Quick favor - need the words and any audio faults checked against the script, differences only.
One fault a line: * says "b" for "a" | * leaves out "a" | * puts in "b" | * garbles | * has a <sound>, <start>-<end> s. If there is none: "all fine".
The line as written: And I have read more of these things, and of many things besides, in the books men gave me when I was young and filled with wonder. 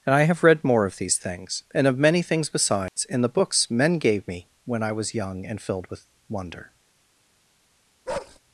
* has a dropout, 2.9-3.0 s
* has a bark, 8.1-8.4 s